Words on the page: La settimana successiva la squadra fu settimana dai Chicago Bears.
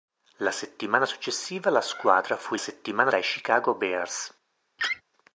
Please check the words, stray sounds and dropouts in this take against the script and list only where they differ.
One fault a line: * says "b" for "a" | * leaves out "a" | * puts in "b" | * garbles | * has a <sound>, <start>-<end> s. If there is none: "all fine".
* has a laugh, 4.8-5.0 s